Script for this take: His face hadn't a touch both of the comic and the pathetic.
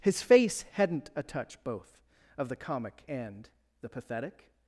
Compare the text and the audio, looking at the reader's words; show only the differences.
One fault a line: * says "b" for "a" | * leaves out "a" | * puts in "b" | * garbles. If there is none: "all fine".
all fine